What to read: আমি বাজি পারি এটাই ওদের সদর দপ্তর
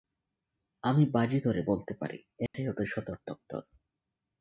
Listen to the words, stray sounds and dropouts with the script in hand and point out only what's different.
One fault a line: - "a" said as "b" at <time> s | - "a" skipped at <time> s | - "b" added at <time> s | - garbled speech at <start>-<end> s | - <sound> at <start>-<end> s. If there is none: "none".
- "ধরে বলতে" added at 1.4 s
- dropout at 2.5-2.5 s